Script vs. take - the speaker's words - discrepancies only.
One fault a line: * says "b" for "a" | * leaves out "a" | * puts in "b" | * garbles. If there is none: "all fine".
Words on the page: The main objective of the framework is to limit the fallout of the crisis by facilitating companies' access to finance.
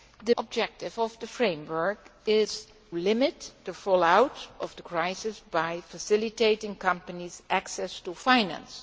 * leaves out "main"
* leaves out "to"